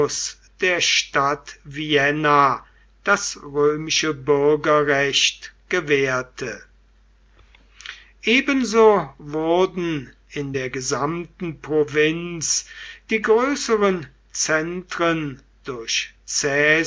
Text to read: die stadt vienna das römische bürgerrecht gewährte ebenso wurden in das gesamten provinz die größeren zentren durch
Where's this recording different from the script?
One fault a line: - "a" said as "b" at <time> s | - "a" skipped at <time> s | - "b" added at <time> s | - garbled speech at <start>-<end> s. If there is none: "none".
- "die" said as "der" at 0.6 s
- "das" said as "der" at 10.5 s